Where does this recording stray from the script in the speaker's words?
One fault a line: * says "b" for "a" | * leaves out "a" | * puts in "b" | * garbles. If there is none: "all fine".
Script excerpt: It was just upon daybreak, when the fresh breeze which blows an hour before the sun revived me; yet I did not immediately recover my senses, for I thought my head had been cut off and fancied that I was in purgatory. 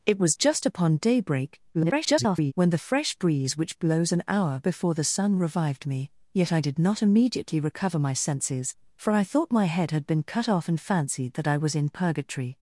* garbles